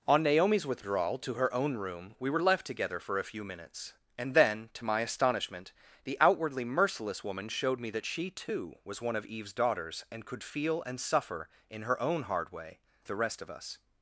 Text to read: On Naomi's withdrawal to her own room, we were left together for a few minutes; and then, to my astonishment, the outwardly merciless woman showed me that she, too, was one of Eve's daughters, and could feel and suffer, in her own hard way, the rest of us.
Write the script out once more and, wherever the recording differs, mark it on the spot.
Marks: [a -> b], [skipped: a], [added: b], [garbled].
On Naomi's withdrawal to her own room, we were left together for a few minutes; and then, to my astonishment, the outwardly merciless woman showed me that she, too, was one of Eve's daughters, and could feel and suffer, in her own hard way, the rest of us.